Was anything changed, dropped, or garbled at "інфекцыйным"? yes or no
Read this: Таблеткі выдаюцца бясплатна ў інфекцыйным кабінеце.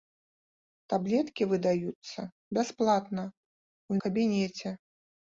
yes